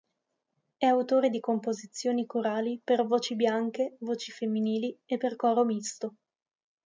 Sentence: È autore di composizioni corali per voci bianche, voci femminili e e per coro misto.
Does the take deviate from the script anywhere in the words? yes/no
yes